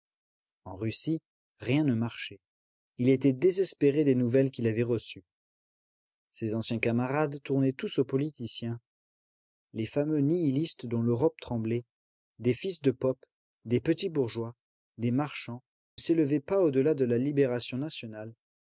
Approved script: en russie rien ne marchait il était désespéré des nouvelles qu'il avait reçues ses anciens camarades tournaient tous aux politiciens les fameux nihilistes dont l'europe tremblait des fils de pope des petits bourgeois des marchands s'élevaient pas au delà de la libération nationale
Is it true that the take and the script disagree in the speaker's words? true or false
false